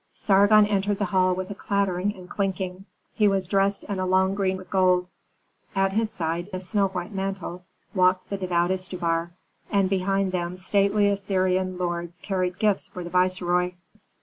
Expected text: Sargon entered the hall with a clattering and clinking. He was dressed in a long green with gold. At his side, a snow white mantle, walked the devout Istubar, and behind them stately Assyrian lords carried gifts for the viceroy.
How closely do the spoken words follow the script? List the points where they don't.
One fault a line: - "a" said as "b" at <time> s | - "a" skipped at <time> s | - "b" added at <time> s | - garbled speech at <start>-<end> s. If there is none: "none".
none